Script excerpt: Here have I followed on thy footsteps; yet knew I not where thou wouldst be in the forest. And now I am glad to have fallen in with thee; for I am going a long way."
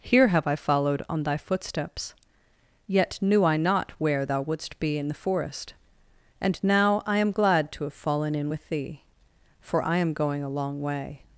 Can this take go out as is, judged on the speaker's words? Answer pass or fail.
pass